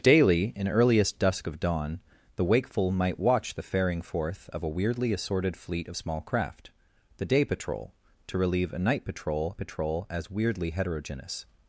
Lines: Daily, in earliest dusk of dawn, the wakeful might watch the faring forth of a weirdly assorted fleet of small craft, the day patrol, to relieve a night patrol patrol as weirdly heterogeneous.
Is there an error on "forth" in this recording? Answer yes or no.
no